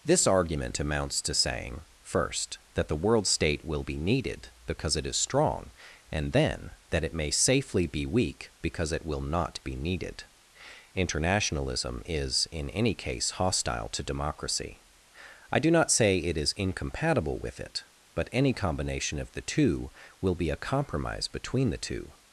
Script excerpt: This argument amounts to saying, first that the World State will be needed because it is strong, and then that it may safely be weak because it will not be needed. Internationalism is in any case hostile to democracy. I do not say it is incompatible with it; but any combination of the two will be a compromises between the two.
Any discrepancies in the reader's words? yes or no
yes